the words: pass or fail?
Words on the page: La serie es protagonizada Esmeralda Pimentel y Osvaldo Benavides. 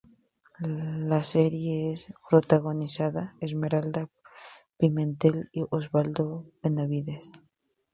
pass